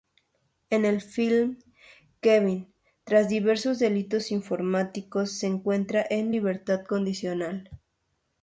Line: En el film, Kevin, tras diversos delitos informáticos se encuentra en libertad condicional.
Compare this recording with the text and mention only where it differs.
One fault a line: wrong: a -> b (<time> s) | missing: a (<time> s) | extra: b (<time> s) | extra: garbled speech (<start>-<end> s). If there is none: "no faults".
no faults